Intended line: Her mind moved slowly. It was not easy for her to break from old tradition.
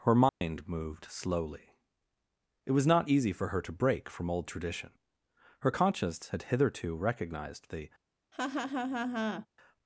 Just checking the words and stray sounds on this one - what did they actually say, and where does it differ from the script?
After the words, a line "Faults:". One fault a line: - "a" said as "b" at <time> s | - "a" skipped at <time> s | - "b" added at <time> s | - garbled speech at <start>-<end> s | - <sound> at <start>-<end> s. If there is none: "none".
Her mind moved slowly. It was not easy for her to break from old tradition. Her conscience had hitherto recognized the
Faults:
- dropout at 0.3-0.4 s
- "Her conscience had hitherto recognized the" added at 5.6 s
- laugh at 8.3-9.5 s